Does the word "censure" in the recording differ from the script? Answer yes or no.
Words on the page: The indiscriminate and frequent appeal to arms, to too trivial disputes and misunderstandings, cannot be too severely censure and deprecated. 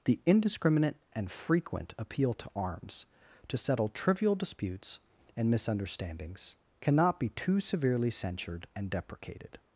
yes